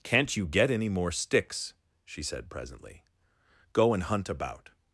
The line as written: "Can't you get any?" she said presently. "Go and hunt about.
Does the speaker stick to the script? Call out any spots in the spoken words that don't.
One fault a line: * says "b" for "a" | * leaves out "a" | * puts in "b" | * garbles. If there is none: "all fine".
* puts in "more sticks"